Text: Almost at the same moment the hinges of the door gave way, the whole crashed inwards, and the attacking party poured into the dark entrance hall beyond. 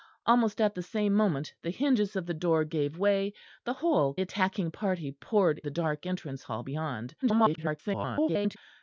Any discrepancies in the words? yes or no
yes